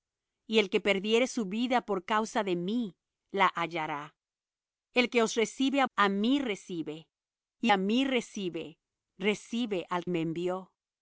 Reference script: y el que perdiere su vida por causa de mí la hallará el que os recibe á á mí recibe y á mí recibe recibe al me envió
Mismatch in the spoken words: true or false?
false